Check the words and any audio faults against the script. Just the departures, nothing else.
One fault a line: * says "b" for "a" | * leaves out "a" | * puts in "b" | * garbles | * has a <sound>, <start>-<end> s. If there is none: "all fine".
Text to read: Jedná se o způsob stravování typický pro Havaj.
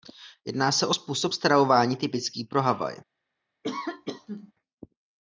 * has a sneeze, 3.6-4.5 s